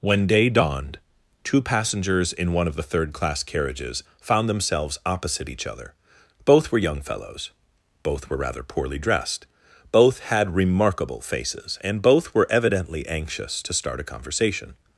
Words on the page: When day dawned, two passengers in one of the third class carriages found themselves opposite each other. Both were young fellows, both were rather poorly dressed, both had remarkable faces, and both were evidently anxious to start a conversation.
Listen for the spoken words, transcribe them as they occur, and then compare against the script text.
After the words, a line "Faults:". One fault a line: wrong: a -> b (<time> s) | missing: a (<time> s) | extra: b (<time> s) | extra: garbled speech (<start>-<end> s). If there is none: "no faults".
When day dawned, two passengers in one of the third class carriages found themselves opposite each other. Both were young fellows, both were rather poorly dressed, both had remarkable faces, and both were evidently anxious to start a conversation.
Faults:
no faults